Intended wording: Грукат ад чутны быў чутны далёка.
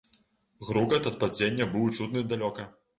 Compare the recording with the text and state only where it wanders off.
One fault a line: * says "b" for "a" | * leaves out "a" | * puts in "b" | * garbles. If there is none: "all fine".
* says "падзення" for "чутны"